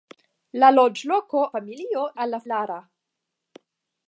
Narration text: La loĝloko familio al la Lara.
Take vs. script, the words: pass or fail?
pass